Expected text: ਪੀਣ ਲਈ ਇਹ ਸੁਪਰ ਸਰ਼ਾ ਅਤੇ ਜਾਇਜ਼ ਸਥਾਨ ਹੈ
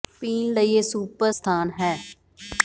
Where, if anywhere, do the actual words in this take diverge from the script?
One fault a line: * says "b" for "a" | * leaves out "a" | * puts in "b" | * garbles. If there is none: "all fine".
* leaves out "ਸਰ਼ਾ ਅਤੇ ਜਾਇਜ਼"